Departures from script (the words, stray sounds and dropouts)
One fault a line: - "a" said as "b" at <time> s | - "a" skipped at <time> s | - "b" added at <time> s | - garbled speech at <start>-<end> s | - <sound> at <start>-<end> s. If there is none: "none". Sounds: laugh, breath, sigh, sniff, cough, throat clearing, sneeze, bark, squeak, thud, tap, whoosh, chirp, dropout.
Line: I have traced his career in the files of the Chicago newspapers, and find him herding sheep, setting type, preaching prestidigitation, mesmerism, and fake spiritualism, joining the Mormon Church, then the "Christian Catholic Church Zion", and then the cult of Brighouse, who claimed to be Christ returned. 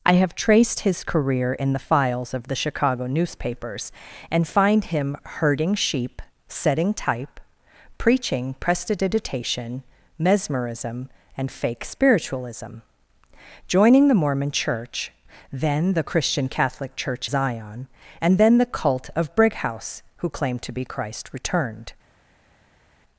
none